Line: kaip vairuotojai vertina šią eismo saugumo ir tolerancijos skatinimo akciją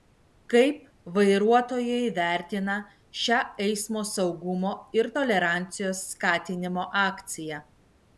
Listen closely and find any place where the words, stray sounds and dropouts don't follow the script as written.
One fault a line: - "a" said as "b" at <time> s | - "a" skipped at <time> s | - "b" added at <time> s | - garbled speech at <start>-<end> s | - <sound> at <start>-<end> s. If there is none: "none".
none